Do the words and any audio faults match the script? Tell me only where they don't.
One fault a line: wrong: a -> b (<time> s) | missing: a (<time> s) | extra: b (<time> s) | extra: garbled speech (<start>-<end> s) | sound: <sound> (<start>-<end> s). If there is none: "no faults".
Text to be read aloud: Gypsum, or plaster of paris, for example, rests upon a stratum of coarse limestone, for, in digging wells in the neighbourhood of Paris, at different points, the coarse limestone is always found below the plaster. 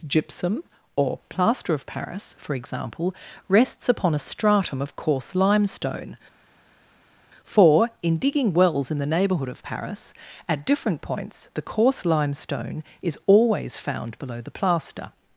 no faults